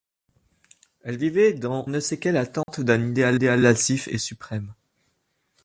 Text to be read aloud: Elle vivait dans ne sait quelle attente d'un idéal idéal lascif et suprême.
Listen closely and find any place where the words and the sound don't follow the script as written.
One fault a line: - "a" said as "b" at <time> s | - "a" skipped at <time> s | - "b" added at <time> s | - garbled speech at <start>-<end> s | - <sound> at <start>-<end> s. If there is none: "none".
- dropout at 2.6-2.7 s